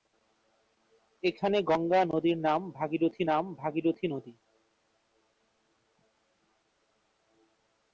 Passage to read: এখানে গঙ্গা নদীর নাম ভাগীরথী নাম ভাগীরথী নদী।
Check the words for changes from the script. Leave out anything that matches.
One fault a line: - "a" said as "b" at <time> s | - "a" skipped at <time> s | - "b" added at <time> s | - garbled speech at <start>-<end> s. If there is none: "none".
none